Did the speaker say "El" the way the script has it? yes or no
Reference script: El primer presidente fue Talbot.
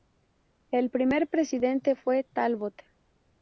yes